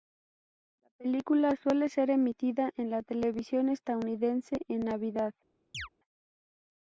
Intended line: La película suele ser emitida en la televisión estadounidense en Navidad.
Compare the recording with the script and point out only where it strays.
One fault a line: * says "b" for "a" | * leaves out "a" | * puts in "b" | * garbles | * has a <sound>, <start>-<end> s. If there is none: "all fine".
* has a chirp, 5.7-5.9 s